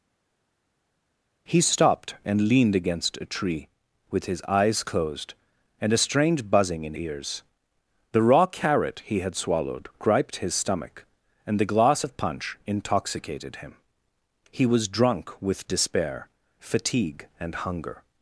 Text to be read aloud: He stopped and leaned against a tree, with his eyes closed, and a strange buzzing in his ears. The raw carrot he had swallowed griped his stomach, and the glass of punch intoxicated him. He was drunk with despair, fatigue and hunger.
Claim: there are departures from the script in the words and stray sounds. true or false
true